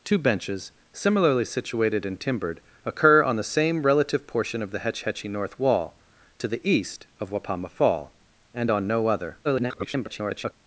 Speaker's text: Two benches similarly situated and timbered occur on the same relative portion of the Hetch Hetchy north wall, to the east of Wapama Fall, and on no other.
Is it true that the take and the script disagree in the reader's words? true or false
true